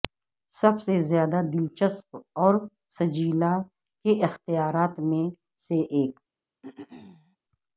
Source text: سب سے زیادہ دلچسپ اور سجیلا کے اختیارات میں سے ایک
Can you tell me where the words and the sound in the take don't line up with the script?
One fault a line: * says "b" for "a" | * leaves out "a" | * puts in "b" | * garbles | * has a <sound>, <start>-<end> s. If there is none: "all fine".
* has a throat clearing, 6.6-7.4 s